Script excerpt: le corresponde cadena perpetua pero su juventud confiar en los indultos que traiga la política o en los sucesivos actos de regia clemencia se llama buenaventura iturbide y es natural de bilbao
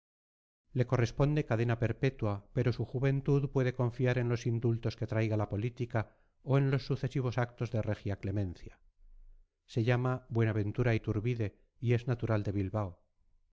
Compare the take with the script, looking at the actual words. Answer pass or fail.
fail